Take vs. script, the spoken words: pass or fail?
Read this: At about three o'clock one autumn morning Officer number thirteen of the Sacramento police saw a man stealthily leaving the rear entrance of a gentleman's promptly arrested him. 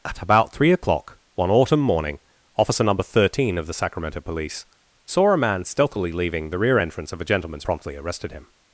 pass